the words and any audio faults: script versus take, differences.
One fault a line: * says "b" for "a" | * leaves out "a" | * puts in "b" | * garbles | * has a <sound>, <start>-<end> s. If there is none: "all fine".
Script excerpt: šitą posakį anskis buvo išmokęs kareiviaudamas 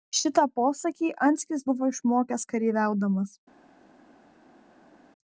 all fine